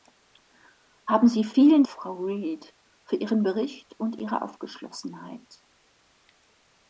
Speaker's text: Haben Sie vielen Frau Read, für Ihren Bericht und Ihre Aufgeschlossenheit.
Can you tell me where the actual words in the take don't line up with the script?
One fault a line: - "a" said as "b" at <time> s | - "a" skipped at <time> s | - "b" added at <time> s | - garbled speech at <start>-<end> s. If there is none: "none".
none